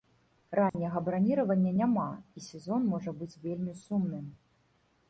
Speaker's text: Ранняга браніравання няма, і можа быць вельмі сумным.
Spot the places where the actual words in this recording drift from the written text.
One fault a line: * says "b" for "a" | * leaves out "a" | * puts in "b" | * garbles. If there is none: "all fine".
* puts in "сезон"